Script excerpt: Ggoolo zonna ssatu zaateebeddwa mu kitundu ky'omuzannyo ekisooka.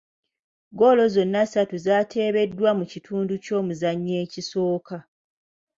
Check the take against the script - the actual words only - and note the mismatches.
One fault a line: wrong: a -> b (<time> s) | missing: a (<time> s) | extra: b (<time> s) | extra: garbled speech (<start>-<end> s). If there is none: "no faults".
no faults